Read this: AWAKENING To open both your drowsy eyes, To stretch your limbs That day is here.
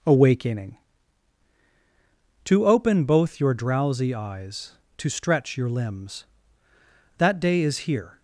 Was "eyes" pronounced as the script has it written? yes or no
yes